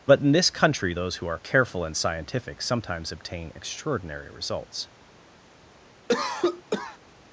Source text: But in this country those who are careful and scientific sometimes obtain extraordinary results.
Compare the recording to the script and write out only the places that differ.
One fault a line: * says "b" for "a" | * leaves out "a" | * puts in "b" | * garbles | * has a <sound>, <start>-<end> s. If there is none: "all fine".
* has a cough, 6.1-7.0 s